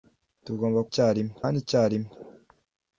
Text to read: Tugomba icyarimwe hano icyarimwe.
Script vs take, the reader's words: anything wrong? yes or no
no